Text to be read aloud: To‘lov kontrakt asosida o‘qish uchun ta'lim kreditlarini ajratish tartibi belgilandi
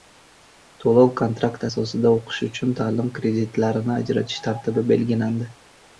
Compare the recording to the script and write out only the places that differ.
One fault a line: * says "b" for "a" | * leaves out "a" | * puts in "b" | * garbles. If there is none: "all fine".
all fine